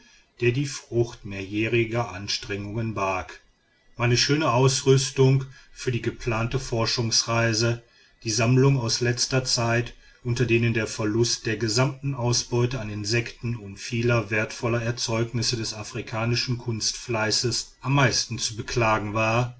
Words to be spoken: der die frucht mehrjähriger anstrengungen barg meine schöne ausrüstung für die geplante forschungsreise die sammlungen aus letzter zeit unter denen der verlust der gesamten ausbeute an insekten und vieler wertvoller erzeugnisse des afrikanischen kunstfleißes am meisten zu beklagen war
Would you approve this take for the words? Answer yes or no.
yes